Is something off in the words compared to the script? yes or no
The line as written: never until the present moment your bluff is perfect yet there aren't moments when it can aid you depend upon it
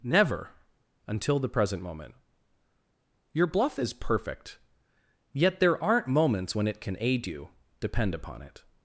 no